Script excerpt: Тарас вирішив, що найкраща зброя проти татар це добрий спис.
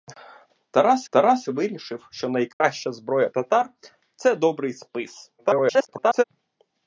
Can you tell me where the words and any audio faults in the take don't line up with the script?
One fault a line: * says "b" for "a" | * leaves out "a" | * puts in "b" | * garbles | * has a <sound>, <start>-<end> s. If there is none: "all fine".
* puts in "тарас"
* has a dropout, 2.5-2.6 s
* leaves out "проти"
* garbles